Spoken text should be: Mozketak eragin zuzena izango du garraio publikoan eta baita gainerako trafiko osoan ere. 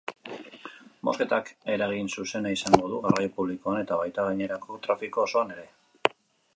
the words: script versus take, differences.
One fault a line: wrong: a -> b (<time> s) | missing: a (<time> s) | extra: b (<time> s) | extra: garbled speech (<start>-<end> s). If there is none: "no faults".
no faults